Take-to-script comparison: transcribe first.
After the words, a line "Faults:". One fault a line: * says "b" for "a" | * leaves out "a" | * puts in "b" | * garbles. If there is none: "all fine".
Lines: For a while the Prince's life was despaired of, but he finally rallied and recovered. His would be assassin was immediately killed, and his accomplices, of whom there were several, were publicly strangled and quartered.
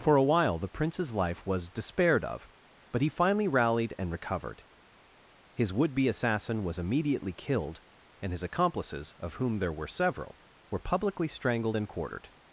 For a while the Prince's life was despaired of, but he finally rallied and recovered. His would be assassin was immediately killed, and his accomplices, of whom there were several, were publicly strangled and quartered.
Faults:
all fine